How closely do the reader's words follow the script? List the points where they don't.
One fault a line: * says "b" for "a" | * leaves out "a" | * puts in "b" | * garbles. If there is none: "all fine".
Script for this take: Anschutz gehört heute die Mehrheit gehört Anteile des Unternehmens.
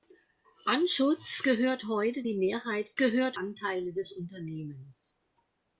all fine